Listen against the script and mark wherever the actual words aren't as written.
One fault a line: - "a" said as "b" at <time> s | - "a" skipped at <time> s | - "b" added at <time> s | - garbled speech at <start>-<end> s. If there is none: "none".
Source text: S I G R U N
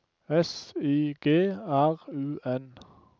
none